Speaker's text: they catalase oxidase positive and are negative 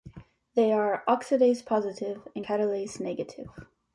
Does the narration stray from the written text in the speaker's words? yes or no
yes